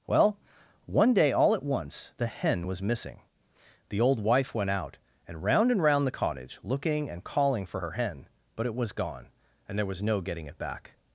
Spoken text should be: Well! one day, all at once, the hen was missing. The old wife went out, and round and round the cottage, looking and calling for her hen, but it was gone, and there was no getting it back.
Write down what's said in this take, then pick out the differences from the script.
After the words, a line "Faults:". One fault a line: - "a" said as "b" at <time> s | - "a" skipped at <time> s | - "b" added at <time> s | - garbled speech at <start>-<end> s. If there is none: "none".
Well! one day, all at once, the hen was missing. The old wife went out, and round and round the cottage, looking and calling for her hen, but it was gone, and there was no getting it back.
Faults:
none